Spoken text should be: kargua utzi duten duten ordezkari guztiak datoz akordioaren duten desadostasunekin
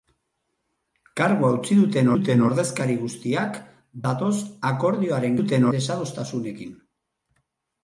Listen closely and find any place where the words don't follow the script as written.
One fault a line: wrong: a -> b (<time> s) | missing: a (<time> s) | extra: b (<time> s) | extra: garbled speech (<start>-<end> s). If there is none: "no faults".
no faults